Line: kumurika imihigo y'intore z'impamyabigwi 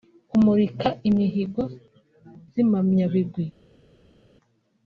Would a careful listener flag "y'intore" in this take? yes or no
yes